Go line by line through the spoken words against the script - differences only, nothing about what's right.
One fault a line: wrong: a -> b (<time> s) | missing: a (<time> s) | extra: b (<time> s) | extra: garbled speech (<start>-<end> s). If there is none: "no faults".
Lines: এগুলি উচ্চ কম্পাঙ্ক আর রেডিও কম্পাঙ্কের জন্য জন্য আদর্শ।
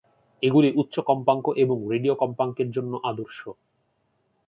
wrong: আর -> এবং (1.6 s)
missing: জন্য (2.9 s)